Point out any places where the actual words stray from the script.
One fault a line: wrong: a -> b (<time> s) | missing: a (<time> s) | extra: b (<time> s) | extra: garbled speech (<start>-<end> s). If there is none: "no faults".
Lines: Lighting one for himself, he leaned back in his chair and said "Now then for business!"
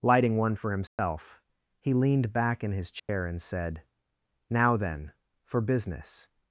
no faults